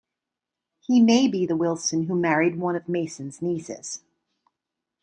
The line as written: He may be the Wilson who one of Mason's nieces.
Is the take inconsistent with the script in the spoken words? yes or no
yes